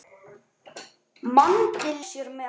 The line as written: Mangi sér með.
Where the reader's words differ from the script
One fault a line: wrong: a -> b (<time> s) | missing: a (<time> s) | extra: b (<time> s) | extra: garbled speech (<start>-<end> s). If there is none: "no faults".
no faults